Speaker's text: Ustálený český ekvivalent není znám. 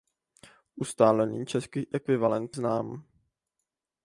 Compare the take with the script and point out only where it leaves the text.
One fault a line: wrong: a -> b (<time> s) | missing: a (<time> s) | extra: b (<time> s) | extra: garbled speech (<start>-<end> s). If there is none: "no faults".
missing: není (2.5 s)